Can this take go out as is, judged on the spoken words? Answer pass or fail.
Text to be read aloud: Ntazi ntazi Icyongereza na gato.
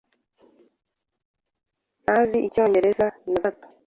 fail